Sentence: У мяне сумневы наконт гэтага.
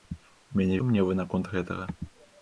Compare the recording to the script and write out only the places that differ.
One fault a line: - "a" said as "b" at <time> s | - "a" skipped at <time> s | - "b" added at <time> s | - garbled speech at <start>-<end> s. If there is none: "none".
none